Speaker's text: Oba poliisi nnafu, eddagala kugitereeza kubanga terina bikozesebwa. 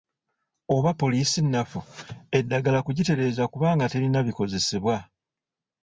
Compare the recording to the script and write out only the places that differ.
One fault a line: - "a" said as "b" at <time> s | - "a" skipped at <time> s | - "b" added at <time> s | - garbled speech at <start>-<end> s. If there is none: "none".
none